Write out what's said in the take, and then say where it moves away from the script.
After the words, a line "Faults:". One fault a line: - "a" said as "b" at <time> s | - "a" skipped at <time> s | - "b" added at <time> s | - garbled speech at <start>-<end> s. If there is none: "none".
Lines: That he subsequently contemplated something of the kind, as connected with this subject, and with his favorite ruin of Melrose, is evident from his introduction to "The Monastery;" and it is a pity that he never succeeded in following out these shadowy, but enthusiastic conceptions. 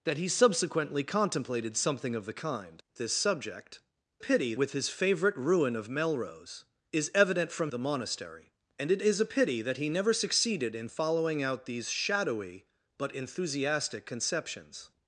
That he subsequently contemplated something of the kind, this subject, pity with his favorite ruin of Melrose, is evident from "The Monastery;" and it is a pity that he never succeeded in following out these shadowy, but enthusiastic conceptions.
Faults:
- "as connected with" skipped at 2.8 s
- "and" said as "pity" at 4.2 s
- "his introduction to" skipped at 7.7 s